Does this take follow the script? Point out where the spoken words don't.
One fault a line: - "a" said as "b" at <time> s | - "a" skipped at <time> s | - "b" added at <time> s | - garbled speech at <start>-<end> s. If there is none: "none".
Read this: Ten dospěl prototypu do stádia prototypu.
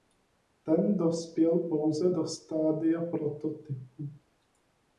- "prototypu" said as "pouze" at 1.6 s